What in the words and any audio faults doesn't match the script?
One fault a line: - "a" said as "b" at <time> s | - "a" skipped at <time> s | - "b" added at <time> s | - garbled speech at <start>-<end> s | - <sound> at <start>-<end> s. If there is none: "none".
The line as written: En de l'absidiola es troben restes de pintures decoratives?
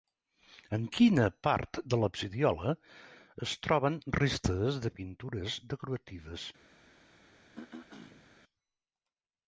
- "quina part" added at 0.9 s
- throat clearing at 7.5-8.3 s